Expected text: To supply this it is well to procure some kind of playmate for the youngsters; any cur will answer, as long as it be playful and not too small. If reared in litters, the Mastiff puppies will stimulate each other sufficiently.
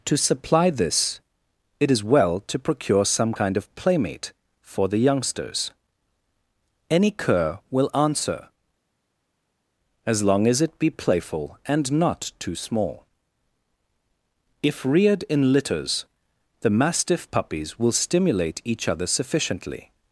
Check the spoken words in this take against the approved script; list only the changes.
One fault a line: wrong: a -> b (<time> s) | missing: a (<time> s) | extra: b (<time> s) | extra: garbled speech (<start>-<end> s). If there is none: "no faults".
no faults